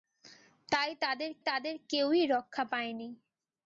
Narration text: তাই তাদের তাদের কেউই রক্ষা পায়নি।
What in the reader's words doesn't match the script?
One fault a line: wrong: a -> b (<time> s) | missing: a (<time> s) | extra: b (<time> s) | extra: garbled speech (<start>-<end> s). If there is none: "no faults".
no faults